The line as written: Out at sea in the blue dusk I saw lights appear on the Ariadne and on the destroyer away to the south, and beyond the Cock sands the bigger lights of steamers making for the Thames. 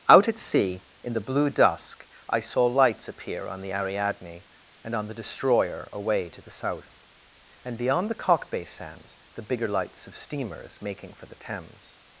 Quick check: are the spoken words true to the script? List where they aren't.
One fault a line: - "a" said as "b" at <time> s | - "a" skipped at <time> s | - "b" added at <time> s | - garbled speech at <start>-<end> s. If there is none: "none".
- "bay" added at 8.5 s